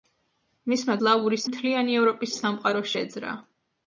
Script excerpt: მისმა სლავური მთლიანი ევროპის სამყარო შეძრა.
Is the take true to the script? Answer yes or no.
yes